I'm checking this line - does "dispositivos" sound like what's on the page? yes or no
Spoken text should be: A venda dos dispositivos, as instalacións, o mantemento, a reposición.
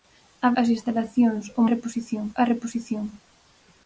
no